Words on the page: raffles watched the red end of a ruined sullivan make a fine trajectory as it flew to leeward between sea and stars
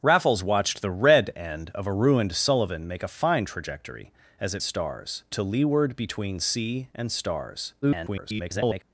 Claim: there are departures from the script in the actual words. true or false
true